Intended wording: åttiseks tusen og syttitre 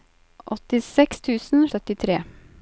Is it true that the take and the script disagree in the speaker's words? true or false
false